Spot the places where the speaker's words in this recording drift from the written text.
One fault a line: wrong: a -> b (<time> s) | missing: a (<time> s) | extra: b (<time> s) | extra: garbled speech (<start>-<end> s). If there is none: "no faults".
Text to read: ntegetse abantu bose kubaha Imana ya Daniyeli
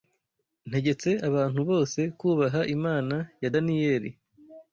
no faults